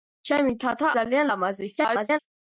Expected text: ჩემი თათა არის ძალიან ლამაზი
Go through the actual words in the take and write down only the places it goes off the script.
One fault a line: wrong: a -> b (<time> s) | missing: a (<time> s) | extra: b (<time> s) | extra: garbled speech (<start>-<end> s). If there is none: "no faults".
missing: არის (0.9 s)
extra: garbled speech (1.8-2.2 s)